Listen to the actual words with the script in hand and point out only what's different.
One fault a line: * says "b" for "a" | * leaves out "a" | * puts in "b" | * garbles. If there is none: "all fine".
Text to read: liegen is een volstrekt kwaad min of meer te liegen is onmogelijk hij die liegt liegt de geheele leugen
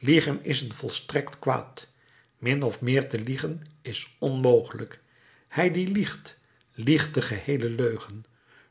all fine